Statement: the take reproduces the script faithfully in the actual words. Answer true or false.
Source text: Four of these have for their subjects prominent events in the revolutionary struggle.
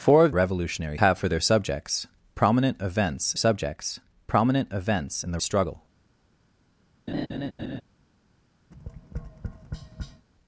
false